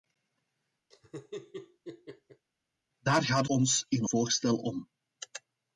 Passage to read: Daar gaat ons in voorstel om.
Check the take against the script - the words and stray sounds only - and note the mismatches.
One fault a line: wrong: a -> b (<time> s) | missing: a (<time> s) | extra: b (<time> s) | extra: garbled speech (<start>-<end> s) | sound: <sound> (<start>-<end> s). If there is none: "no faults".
sound: laugh (0.9-2.5 s)